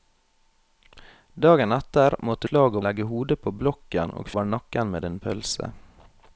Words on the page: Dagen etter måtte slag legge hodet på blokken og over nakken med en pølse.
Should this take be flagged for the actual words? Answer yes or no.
no